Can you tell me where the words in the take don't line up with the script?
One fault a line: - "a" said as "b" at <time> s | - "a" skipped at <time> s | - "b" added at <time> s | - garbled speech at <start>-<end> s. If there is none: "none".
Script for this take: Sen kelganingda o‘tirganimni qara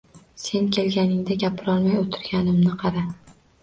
- "gapirolmay" added at 1.4 s